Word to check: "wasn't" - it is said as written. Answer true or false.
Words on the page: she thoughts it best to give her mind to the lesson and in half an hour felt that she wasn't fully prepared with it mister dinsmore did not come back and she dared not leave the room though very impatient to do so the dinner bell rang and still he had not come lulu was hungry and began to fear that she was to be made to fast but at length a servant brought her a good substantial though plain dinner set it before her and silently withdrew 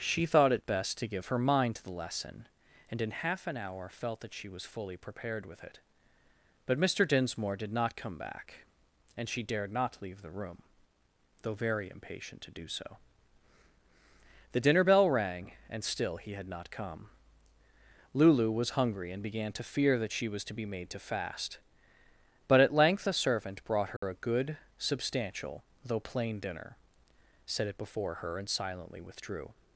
false